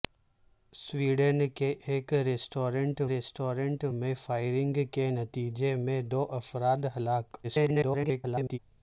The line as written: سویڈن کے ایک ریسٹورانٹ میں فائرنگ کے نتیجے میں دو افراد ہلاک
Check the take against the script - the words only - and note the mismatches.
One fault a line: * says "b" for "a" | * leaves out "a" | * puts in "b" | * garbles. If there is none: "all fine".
* puts in "ریسٹورانٹ"
* garbles